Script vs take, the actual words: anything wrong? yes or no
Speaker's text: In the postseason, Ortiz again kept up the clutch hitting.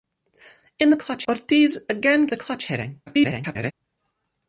yes